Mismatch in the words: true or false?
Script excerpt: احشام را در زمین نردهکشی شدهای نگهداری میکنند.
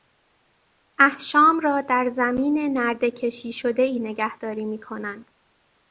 false